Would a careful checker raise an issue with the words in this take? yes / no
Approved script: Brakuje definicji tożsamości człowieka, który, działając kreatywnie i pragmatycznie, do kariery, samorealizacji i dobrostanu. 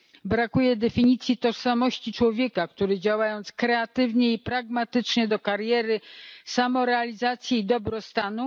no